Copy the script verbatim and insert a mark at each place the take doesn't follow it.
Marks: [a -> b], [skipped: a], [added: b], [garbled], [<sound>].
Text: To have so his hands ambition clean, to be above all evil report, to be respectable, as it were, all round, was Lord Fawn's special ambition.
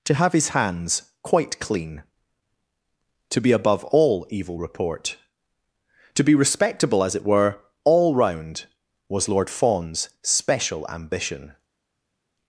To have [skipped: so] his hands [ambition -> quite] clean, to be above all evil report, to be respectable, as it were, all round, was Lord Fawn's special ambition.